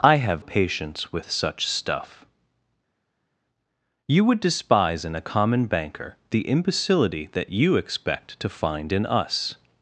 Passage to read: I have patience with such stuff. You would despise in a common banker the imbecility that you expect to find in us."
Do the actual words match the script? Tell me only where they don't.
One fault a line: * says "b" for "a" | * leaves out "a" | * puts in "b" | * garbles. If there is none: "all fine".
all fine